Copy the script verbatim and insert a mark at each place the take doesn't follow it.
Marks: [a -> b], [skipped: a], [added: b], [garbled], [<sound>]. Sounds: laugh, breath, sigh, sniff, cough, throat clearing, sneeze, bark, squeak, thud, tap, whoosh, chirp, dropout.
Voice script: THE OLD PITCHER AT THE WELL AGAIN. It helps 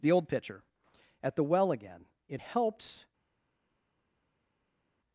THE OLD PITCHER AT THE WELL AGAIN. It helps